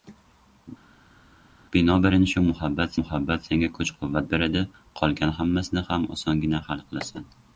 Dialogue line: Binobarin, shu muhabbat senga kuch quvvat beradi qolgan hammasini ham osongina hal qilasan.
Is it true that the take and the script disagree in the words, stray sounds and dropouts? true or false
true